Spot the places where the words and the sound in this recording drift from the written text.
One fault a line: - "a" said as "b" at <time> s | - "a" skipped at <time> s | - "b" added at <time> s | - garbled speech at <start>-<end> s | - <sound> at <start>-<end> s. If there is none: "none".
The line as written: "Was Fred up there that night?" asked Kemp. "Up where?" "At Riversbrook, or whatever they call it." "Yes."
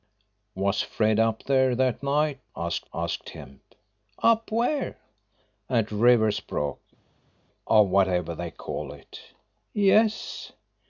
- "asked" added at 2.9 s